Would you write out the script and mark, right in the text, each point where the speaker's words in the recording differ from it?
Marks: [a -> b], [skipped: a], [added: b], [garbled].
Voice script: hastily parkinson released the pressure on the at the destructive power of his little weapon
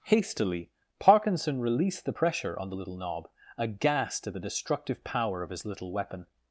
hastily parkinson released the pressure on the [added: little knob aghast] at the destructive power of his little weapon